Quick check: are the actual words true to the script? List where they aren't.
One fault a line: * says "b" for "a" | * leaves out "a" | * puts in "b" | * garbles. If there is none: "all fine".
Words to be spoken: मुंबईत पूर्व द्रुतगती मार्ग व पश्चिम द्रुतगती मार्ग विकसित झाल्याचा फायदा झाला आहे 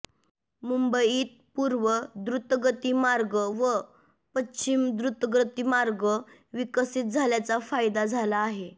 all fine